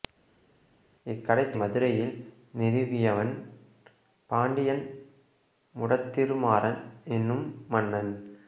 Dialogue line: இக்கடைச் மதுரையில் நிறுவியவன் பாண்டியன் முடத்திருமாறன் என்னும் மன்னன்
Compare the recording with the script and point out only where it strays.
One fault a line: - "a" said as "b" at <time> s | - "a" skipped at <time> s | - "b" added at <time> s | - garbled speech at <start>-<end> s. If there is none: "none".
none